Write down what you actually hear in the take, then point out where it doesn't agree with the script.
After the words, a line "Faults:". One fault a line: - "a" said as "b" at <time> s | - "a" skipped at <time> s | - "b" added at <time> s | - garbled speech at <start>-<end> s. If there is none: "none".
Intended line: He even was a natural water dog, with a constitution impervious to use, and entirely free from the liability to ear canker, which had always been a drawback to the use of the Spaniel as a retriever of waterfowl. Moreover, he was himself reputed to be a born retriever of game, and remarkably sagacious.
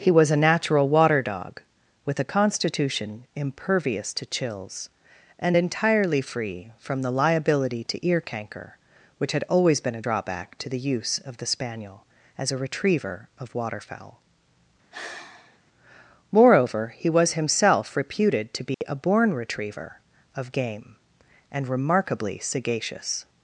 He was a natural water dog, with a constitution impervious to chills, and entirely free from the liability to ear canker, which had always been a drawback to the use of the Spaniel as a retriever of waterfowl. Moreover, he was himself reputed to be a born retriever of game, and remarkably sagacious.
Faults:
- "even" skipped at 0.1 s
- "use" said as "chills" at 4.2 s